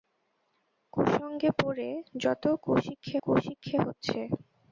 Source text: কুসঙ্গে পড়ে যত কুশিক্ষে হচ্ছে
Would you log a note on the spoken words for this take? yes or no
yes